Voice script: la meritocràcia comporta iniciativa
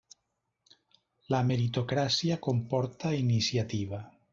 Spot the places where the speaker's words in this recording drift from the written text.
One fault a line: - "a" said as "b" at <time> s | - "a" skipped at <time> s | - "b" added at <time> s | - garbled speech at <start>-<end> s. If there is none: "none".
none